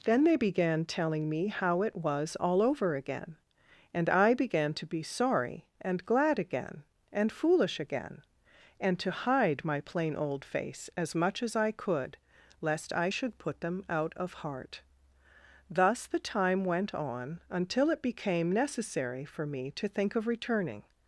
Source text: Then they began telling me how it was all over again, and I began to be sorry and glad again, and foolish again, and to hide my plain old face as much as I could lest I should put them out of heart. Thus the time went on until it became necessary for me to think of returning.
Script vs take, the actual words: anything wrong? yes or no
no